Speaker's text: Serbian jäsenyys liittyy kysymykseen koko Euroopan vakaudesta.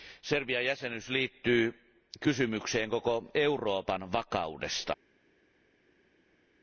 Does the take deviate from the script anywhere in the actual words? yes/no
no